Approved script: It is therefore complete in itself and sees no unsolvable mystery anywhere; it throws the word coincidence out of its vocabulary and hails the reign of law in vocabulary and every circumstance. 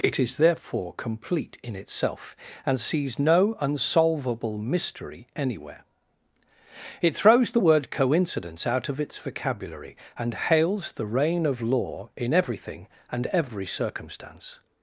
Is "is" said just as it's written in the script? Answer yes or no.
yes